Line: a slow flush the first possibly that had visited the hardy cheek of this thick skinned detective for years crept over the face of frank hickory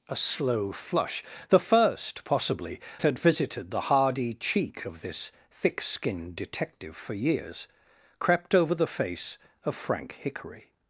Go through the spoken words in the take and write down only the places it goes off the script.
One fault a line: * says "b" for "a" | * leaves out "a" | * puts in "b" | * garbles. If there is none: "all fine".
* leaves out "that"